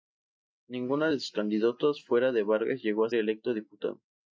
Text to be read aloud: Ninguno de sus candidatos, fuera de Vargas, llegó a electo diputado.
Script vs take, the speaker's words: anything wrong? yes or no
no